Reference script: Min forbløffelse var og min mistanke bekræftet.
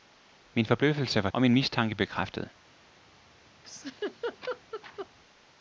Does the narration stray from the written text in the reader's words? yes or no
no